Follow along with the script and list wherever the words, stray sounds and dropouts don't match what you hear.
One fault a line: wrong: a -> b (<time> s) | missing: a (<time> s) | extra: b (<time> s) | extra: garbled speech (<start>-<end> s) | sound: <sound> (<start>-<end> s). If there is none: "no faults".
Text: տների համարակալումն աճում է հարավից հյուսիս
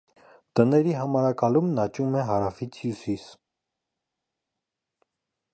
no faults